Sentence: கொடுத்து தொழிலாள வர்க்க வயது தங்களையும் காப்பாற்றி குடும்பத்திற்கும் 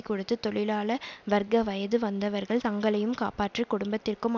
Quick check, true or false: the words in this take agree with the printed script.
false